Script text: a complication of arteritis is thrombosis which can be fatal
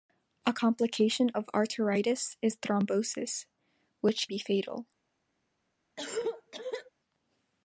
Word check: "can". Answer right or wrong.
wrong